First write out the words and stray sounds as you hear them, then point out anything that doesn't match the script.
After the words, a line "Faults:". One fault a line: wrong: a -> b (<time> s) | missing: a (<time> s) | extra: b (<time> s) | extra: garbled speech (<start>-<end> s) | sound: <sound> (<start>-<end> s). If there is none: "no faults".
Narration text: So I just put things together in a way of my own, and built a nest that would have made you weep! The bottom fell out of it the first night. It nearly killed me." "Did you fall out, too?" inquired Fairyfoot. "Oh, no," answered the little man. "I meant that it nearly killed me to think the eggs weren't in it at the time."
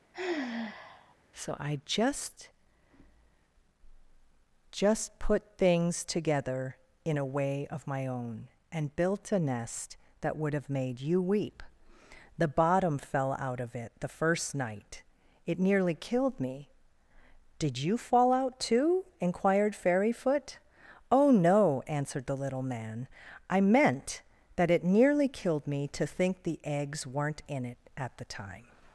So I just just put things together in a way of my own, and built a nest that would have made you weep! The bottom fell out of it the first night. It nearly killed me." "Did you fall out, too?" inquired Fairyfoot. "Oh, no," answered the little man. "I meant that it nearly killed me to think the eggs weren't in it at the time."
Faults:
sound: sigh (0.1-1.1 s)
extra: just (4.7 s)